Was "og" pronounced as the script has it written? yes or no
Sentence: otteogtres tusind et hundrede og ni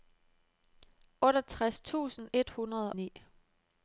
no